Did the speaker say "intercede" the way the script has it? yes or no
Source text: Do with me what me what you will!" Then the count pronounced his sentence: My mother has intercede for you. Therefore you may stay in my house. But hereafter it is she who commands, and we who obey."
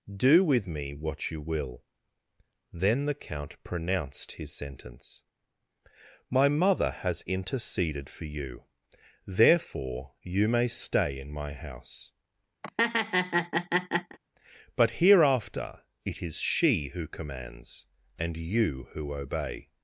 no